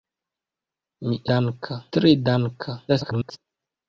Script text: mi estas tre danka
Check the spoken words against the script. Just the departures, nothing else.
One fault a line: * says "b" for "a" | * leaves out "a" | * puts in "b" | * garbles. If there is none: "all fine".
* says "danka" for "estas"
* garbles